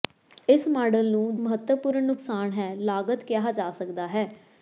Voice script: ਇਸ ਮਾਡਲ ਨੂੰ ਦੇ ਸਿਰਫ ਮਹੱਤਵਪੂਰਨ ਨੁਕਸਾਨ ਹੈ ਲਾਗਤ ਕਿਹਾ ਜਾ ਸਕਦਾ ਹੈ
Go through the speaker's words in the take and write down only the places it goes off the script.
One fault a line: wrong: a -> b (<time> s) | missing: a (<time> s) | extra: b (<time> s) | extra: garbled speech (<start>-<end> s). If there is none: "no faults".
missing: ਦੇ ਸਿਰਫ (1.4 s)